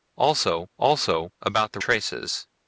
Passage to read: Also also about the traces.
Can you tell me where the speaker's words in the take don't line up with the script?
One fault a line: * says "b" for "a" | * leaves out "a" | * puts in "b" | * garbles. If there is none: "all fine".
all fine